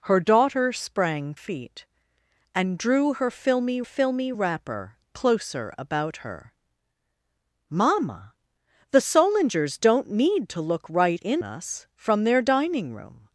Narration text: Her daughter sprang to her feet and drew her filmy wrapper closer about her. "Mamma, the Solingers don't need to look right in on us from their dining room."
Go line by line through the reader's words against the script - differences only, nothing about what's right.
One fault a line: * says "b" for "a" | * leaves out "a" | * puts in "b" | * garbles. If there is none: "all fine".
* leaves out "to her"
* puts in "filmy"
* leaves out "on"